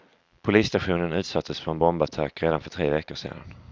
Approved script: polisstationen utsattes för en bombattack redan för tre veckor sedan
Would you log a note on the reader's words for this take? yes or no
no